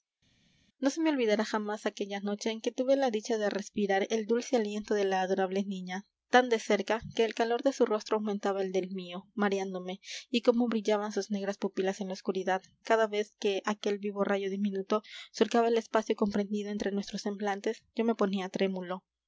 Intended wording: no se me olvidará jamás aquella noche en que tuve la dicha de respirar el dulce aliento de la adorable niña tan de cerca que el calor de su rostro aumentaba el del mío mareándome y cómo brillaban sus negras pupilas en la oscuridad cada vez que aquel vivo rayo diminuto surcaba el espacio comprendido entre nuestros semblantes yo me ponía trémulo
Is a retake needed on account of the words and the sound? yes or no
no